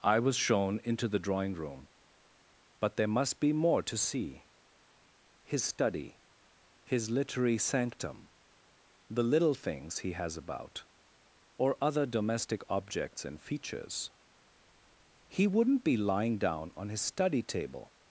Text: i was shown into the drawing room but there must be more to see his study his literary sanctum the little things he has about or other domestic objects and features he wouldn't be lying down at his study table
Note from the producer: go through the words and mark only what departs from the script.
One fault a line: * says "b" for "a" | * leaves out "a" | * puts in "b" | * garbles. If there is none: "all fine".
* says "on" for "at"